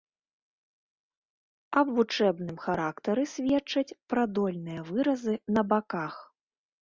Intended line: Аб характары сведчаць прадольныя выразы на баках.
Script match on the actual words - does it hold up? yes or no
no